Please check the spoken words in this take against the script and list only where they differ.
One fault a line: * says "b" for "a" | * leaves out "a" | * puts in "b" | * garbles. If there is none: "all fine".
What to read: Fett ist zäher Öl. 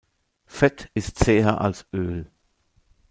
* puts in "als"